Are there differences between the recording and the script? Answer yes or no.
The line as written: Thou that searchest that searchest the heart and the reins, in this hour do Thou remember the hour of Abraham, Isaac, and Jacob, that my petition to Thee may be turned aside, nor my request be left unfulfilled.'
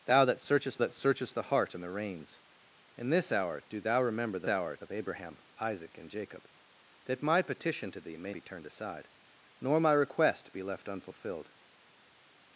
no